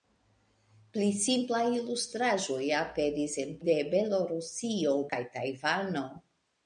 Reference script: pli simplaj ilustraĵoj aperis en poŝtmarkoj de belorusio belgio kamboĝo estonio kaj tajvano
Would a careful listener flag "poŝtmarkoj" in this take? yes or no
yes